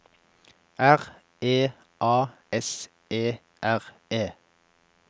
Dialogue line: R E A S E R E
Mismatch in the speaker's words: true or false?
false